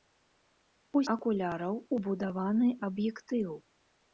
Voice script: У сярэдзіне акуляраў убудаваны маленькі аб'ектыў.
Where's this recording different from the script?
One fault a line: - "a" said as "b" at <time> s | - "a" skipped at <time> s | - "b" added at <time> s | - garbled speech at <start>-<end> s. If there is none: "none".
- "сярэдзіне" skipped at 1.0 s
- "маленькі" skipped at 2.7 s